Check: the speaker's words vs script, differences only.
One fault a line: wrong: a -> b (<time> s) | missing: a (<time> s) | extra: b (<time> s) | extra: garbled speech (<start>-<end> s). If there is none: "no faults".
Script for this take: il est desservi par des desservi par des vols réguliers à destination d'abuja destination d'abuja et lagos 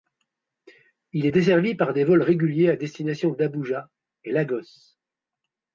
missing: desservi par des (2.1 s)
missing: destination d'abuja (3.9 s)